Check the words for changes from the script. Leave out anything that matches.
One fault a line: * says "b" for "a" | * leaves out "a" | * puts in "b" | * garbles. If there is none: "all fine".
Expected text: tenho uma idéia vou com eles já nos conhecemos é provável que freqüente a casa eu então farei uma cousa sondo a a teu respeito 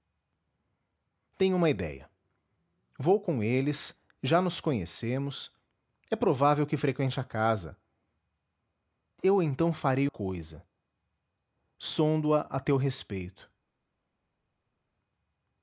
* leaves out "uma"